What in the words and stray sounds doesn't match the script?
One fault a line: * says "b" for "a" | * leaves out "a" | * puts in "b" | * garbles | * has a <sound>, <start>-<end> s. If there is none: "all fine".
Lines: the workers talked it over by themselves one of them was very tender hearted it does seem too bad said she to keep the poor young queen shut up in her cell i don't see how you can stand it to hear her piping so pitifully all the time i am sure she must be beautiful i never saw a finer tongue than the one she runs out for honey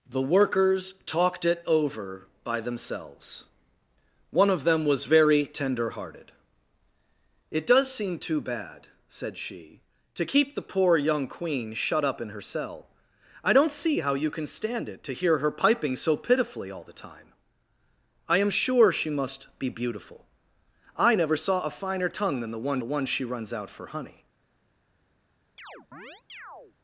* puts in "the one"
* has a chirp, 25.6-26.8 s